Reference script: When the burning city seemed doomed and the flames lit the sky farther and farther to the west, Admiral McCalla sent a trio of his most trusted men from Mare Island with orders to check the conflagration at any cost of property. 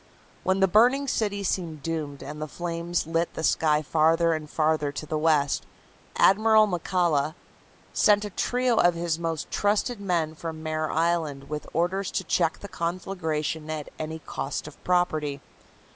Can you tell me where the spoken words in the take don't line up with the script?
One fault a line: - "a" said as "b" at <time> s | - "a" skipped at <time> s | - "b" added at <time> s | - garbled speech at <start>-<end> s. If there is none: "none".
none